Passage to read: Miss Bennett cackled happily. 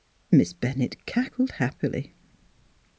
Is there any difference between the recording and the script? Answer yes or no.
no